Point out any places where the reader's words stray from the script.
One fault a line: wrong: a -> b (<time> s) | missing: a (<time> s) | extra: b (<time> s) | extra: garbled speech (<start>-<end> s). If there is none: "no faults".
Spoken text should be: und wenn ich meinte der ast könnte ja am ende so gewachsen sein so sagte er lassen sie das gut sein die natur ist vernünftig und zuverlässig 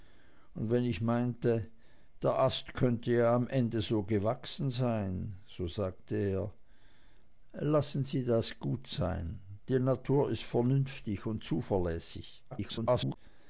extra: garbled speech (12.5-13.2 s)